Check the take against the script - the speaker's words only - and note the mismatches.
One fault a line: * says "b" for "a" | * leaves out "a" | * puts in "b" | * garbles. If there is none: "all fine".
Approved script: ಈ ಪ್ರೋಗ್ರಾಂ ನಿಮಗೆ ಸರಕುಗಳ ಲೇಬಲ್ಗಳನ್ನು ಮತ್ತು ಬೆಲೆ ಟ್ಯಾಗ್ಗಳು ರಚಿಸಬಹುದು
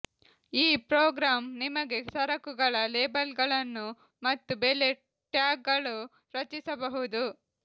all fine